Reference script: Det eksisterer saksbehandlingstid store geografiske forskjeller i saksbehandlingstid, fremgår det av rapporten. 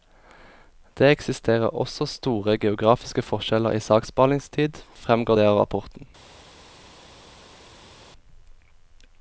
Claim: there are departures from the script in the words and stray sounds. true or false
true